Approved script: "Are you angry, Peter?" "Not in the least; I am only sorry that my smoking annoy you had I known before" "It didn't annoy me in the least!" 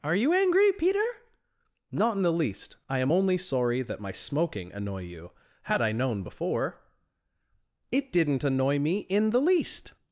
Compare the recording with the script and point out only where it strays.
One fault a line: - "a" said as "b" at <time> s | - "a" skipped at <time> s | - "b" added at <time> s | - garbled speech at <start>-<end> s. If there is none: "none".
none